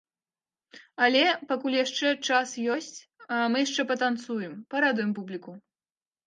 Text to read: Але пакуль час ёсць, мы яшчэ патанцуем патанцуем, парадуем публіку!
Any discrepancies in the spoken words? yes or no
yes